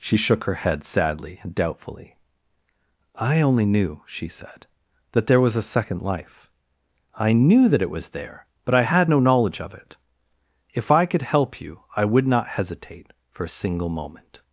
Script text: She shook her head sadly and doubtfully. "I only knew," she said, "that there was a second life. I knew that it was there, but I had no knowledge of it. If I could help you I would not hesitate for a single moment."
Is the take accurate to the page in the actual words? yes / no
yes